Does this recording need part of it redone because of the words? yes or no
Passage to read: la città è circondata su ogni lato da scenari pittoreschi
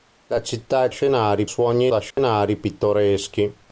yes